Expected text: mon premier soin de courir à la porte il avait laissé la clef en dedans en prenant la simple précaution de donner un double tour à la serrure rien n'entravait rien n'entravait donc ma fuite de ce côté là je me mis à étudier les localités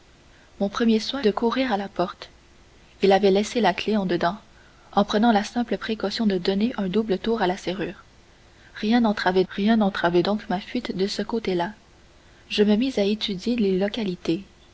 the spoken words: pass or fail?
pass